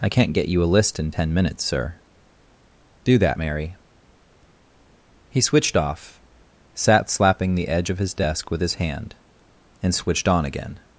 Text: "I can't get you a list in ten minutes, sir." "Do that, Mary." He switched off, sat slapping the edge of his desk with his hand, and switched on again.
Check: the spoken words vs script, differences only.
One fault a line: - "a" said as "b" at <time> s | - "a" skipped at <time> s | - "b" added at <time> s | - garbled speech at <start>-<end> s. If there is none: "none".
none